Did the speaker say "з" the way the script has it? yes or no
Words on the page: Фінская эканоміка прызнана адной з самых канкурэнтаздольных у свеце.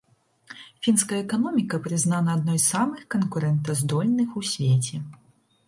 yes